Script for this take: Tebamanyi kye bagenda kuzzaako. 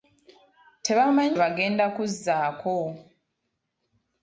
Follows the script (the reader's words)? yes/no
no